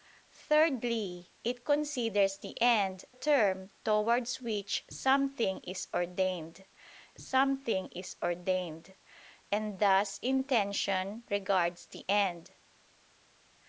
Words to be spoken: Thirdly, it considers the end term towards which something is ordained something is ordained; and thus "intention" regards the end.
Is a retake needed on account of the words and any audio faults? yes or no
no